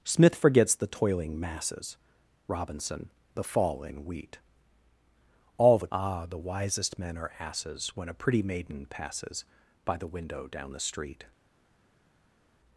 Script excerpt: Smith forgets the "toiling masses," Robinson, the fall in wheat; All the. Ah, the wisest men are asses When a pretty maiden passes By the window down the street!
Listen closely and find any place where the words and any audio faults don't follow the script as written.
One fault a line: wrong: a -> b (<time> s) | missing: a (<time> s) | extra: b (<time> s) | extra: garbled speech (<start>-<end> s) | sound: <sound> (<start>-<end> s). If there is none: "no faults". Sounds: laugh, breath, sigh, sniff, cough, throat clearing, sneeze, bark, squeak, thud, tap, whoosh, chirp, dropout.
no faults